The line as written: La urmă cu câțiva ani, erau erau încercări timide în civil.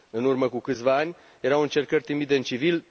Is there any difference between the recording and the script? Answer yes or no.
yes